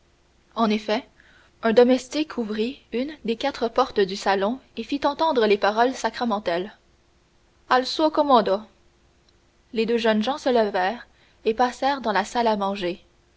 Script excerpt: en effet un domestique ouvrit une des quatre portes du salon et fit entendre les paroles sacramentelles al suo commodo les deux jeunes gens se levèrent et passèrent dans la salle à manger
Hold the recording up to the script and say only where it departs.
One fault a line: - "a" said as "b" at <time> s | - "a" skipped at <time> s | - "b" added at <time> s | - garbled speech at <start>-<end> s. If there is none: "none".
none